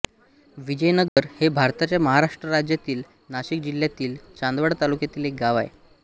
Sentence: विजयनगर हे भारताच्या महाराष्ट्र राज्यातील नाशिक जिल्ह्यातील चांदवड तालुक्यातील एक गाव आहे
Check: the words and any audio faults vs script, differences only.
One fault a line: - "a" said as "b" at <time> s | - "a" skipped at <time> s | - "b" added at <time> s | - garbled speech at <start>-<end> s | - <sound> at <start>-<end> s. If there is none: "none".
- dropout at 1.1-1.2 s